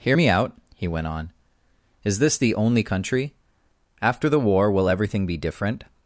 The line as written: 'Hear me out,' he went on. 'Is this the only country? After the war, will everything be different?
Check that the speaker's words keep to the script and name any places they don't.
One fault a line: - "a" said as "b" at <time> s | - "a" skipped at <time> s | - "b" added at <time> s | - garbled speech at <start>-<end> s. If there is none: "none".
none